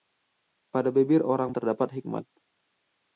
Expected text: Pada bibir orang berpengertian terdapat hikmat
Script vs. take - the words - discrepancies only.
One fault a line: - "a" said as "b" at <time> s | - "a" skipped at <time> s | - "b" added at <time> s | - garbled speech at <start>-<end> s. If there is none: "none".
- "berpengertian" skipped at 1.5 s